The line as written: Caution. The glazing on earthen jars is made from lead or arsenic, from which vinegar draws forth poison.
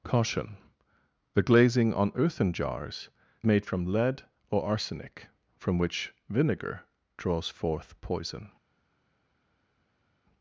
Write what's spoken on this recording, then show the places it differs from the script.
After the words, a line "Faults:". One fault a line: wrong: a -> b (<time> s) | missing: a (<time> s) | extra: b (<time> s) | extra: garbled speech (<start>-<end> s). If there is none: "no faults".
Caution. The glazing on earthen jars made from lead or arsenic, from which vinegar draws forth poison.
Faults:
missing: is (3.1 s)